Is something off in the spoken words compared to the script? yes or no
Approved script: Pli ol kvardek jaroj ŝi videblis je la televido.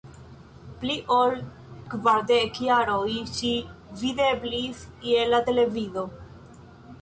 no